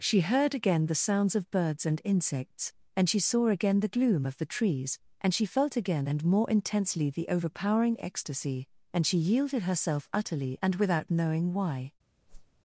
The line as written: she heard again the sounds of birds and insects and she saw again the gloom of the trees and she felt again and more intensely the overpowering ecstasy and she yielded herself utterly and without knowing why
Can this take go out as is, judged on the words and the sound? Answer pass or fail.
fail